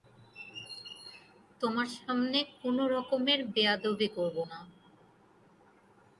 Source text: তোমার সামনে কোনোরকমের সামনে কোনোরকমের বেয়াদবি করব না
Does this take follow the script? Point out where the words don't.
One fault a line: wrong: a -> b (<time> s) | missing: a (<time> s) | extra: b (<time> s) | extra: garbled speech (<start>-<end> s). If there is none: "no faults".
missing: সামনে কোনোরকমের (3.4 s)